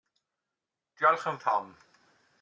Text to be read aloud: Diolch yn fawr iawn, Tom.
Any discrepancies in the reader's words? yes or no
yes